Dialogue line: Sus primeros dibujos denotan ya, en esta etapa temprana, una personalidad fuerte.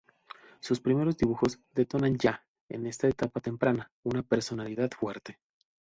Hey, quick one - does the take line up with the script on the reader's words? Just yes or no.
yes